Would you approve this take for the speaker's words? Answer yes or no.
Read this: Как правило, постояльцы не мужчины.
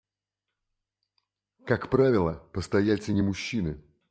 yes